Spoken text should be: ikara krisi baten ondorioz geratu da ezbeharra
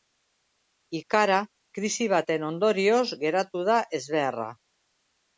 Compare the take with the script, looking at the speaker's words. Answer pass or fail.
pass